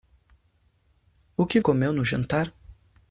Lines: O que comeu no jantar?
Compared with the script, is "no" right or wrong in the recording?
right